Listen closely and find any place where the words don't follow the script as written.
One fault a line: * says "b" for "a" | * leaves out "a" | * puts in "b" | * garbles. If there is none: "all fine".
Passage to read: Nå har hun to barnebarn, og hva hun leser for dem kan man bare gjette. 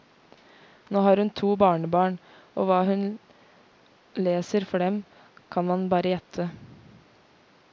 all fine